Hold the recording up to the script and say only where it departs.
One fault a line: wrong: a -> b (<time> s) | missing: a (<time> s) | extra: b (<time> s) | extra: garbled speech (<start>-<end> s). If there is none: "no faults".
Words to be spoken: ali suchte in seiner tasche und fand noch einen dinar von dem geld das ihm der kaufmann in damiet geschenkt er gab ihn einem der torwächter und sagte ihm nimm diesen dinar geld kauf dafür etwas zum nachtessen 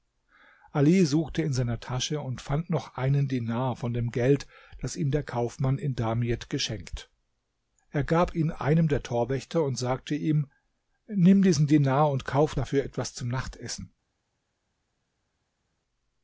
wrong: geld -> und (12.1 s)